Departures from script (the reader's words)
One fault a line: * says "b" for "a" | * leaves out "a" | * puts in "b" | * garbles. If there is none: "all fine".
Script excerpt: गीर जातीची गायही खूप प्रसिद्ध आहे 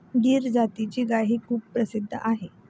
all fine